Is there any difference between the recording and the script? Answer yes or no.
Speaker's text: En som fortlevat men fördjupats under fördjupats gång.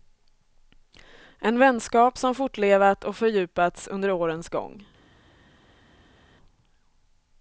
yes